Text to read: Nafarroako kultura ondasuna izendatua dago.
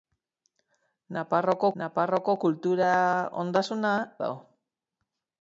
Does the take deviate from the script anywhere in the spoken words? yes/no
yes